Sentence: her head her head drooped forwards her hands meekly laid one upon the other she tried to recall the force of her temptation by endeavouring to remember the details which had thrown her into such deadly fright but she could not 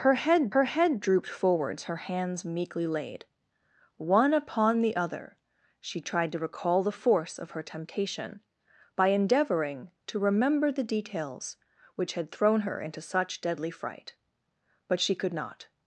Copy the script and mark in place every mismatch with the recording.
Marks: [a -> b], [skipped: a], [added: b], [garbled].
her head her head drooped forwards her hands meekly laid one upon the other she tried to recall the force of her temptation by endeavouring to remember the details which had thrown her into such deadly fright but she could not